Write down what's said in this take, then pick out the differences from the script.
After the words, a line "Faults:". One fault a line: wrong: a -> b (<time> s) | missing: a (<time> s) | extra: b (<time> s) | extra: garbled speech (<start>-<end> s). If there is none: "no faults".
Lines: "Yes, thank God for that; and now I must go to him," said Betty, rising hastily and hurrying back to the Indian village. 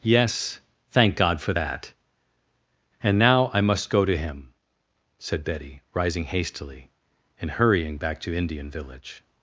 "Yes, thank God for that; and now I must go to him," said Betty, rising hastily and hurrying back to Indian village.
Faults:
missing: the (8.3 s)